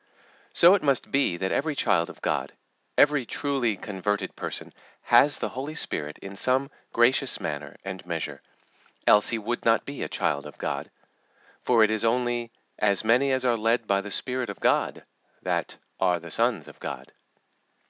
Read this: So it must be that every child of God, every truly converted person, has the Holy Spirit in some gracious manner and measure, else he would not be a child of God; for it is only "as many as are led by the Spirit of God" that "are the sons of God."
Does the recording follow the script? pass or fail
pass